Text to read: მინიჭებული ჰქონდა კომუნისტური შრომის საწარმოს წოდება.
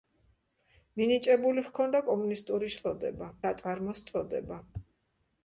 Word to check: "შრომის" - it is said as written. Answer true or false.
false